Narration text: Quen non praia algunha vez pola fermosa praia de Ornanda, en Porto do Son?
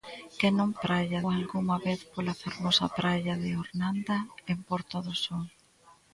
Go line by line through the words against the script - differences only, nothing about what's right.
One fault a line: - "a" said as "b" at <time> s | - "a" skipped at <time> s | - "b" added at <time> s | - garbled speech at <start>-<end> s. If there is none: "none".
none